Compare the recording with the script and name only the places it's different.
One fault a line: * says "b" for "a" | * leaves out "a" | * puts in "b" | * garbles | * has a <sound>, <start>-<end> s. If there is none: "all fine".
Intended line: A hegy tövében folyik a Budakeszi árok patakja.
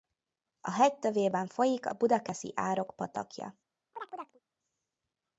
* has a chirp, 3.9-4.4 s